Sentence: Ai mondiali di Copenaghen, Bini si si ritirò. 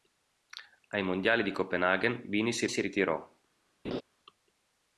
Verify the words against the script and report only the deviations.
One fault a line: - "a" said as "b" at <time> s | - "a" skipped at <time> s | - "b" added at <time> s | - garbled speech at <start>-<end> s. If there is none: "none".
none